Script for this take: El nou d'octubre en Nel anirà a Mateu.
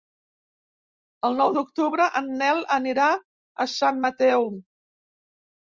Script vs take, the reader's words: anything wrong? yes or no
yes